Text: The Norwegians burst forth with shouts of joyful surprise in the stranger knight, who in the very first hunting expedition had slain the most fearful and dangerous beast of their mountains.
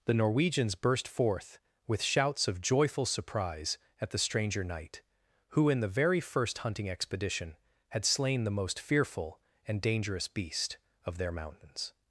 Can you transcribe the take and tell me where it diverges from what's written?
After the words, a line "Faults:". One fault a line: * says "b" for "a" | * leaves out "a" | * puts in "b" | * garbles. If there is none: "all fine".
The Norwegians burst forth with shouts of joyful surprise at the stranger knight, who in the very first hunting expedition had slain the most fearful and dangerous beast of their mountains.
Faults:
* says "at" for "in"